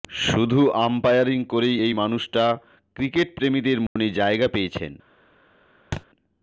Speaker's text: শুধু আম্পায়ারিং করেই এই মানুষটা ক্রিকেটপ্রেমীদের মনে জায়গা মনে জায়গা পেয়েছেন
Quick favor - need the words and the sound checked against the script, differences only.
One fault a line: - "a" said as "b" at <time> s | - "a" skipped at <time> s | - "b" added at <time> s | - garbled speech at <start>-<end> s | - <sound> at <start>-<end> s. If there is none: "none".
- dropout at 3.9-4.0 s
- "মনে জায়গা" skipped at 4.5 s
- thud at 5.9-6.1 s